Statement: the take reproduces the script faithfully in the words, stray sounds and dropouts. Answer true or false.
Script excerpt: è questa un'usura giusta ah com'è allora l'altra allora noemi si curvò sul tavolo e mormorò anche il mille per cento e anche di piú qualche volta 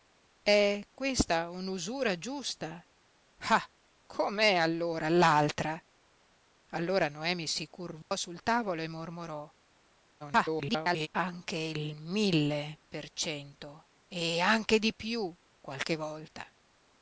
false